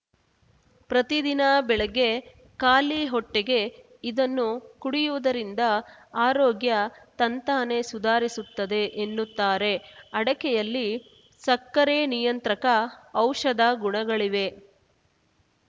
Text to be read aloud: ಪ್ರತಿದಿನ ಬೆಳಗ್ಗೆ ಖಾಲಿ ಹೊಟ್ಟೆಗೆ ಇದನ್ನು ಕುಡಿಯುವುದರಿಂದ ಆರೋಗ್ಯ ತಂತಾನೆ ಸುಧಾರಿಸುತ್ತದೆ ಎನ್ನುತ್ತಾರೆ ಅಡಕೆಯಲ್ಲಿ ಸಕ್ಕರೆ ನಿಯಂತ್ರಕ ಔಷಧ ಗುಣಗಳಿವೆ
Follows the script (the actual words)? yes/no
yes